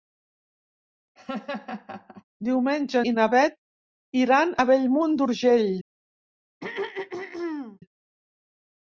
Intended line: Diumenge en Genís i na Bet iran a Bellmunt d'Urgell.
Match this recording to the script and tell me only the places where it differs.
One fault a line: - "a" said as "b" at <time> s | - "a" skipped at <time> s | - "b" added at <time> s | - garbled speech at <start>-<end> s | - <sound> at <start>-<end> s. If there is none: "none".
- laugh at 1.2-2.2 s
- "en Genís" skipped at 3.0 s
- throat clearing at 6.6-7.8 s